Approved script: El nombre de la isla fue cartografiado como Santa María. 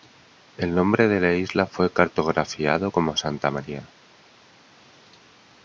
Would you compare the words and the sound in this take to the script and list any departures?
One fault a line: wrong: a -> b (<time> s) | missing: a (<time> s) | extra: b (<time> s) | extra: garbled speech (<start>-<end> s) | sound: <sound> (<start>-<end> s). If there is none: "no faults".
no faults